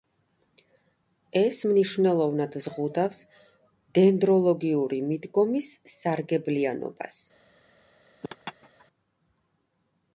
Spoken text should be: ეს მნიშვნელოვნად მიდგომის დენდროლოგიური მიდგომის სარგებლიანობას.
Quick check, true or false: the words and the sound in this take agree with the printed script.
false